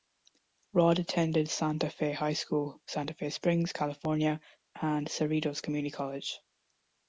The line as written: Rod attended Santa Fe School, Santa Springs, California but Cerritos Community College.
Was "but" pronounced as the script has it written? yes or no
no